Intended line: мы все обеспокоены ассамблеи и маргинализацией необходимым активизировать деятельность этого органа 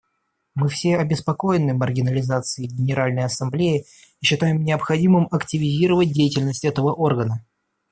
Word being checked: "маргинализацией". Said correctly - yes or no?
no